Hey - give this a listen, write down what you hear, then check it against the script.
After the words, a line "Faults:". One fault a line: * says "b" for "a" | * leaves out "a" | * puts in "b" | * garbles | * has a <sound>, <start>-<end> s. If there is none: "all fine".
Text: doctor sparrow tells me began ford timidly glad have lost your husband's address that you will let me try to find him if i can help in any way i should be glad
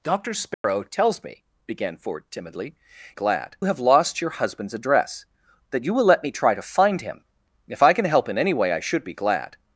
doctor sparrow tells me began ford timidly glad have lost your husband's address that you will let me try to find him if i can help in any way i should be glad
Faults:
* has a dropout, 0.5-0.6 s